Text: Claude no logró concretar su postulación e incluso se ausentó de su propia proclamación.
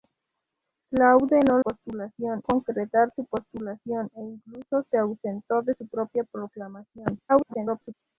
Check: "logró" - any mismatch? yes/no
yes